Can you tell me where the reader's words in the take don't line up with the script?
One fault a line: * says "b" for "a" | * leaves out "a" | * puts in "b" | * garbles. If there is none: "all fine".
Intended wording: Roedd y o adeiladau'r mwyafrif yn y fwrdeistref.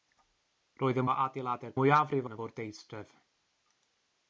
all fine